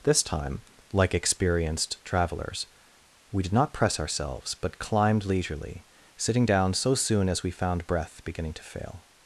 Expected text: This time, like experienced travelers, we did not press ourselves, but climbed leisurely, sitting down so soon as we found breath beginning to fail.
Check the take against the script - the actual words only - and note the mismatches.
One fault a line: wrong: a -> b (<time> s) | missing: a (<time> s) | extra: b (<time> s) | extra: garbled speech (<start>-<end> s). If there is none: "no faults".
no faults